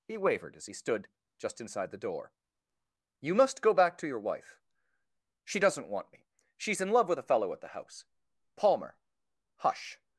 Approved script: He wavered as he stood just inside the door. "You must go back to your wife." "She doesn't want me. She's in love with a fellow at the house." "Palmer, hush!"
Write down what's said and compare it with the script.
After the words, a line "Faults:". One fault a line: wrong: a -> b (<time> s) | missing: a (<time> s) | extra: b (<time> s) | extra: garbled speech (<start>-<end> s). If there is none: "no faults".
He wavered as he stood just inside the door. "You must go back to your wife." "She doesn't want me. She's in love with a fellow at the house." "Palmer, hush!"
Faults:
no faults